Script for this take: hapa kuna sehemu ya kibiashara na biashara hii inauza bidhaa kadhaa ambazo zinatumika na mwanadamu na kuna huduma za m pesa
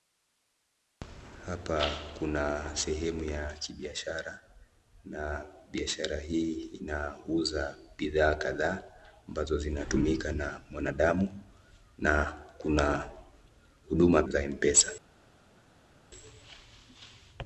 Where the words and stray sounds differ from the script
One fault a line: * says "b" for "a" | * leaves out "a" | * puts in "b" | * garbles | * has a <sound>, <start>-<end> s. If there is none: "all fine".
all fine